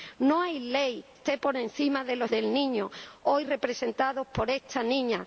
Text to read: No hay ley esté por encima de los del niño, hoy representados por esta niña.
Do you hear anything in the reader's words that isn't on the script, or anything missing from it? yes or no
no